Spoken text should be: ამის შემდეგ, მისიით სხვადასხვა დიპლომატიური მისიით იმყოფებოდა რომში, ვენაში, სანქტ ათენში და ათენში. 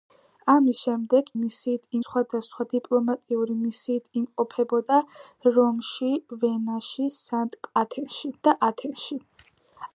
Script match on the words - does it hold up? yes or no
yes